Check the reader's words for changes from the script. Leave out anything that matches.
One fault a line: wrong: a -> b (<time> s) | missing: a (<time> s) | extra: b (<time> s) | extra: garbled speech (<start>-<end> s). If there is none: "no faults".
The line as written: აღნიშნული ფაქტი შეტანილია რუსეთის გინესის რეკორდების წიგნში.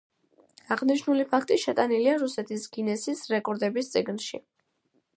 no faults